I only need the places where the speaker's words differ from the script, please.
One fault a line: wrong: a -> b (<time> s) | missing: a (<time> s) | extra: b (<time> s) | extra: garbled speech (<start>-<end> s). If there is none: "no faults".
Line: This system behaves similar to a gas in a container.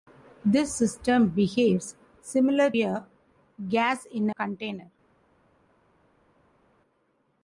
missing: to (2.7 s)
missing: a (4.3 s)